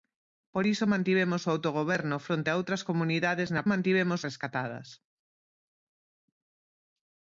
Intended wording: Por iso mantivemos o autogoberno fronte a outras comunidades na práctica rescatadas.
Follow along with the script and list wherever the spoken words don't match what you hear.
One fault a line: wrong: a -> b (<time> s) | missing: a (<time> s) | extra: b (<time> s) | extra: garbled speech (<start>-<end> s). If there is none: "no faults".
wrong: práctica -> mantivemos (3.7 s)